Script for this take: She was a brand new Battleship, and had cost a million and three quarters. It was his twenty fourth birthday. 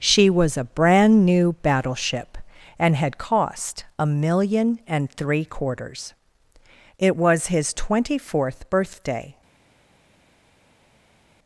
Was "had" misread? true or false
false